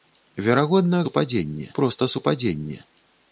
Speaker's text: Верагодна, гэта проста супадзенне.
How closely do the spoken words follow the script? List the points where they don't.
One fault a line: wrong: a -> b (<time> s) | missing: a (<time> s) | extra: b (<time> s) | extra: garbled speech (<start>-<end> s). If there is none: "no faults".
wrong: гэта -> супадзенне (1.1 s)